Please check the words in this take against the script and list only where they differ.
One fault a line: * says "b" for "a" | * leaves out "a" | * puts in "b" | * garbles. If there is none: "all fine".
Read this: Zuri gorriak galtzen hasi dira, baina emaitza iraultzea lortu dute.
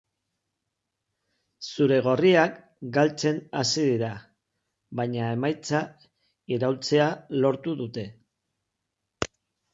all fine